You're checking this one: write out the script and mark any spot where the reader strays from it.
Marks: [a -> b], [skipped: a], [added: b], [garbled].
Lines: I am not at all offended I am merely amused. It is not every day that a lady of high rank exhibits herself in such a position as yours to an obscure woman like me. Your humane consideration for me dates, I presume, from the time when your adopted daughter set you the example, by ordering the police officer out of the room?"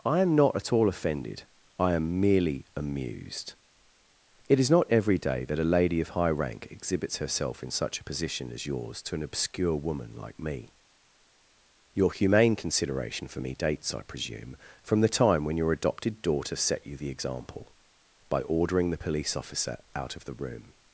I am not at all offended I am merely amused. It is not every day that a lady of high rank exhibits herself in such a position as yours to an obscure woman like me. Your humane consideration for me dates, I presume, from the time when your adopted daughter set you the example, by ordering the police officer out of the room?"